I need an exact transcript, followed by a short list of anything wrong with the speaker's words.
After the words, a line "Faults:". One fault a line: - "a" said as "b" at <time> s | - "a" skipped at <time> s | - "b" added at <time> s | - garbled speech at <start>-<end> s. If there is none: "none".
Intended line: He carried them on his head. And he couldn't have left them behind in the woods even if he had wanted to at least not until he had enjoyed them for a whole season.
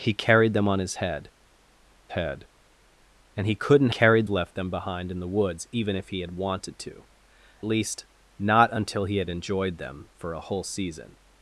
He carried them on his head head. And he couldn't carried left them behind in the woods even if he had wanted to least not until he had enjoyed them for a whole season.
Faults:
- "head" added at 2.1 s
- "have" said as "carried" at 3.9 s
- "at" skipped at 7.0 s